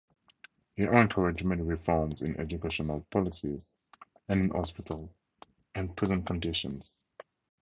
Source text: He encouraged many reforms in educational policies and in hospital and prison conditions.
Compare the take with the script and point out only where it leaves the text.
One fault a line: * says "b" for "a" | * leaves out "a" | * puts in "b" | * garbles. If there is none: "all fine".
all fine